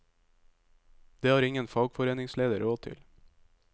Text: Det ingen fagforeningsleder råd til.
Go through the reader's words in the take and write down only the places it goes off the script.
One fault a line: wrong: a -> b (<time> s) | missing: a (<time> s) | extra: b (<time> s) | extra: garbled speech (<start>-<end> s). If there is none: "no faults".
extra: har (1.3 s)